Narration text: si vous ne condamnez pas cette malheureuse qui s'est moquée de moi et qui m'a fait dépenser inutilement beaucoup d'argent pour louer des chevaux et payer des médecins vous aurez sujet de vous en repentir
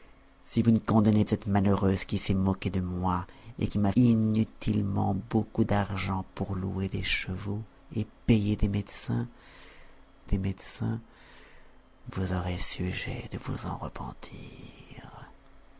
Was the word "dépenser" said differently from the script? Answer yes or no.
yes